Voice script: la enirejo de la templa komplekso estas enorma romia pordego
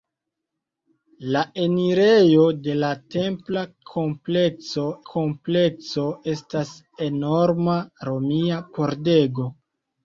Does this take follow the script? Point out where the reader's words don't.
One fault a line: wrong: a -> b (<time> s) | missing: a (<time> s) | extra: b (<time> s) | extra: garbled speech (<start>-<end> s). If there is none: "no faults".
extra: komplekso (5.1 s)